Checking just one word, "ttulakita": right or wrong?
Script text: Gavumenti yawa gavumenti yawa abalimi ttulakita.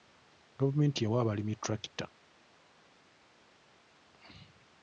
right